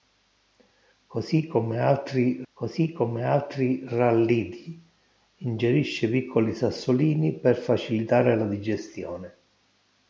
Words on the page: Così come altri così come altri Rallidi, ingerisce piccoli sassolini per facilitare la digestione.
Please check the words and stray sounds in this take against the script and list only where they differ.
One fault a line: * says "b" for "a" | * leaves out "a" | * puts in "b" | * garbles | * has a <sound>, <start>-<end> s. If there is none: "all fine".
all fine